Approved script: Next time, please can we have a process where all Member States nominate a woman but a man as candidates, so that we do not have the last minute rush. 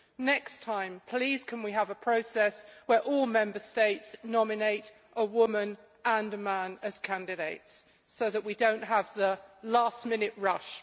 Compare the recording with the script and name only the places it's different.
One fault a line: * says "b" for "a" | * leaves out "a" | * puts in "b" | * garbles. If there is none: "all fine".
* says "and" for "but"